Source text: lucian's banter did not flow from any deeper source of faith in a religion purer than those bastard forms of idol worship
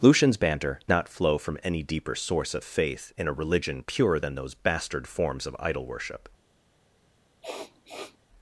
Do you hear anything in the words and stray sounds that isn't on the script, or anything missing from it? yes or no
yes